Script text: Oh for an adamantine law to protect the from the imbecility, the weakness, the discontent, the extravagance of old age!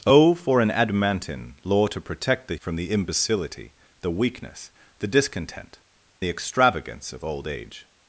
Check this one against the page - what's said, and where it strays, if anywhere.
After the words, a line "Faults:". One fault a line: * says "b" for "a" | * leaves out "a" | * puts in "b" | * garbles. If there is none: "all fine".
Oh for an adamantine law to protect the from the imbecility, the weakness, the discontent, the extravagance of old age!
Faults:
all fine